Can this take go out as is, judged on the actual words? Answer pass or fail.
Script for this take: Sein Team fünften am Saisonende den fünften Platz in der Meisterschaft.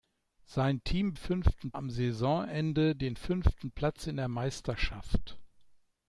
pass